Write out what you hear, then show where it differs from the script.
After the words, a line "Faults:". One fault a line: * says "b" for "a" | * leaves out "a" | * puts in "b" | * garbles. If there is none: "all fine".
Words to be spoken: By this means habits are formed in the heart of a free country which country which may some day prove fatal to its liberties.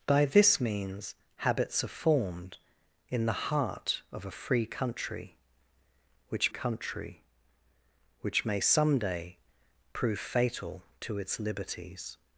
By this means habits are formed in the heart of a free country which country which may some day prove fatal to its liberties.
Faults:
all fine